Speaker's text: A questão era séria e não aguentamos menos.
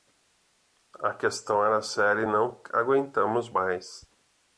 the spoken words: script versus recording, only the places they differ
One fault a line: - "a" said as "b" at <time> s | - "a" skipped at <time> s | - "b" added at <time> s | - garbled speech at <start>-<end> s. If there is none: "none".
- "menos" said as "mais" at 3.5 s